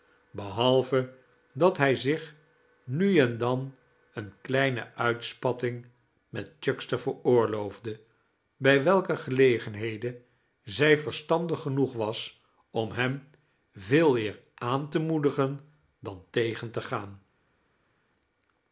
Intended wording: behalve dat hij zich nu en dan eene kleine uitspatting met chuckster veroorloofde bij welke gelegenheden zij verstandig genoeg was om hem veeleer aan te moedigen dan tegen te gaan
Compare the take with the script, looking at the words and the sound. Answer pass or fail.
pass